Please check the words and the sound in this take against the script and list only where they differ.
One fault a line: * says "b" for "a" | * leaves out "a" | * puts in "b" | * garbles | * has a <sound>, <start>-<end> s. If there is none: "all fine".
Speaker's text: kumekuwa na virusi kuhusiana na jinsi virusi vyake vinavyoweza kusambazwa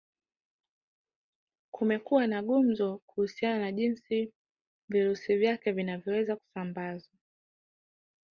* says "gumzo" for "virusi"